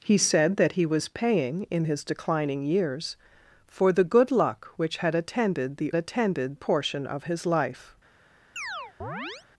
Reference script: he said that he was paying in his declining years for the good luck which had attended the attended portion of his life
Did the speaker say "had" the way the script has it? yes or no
yes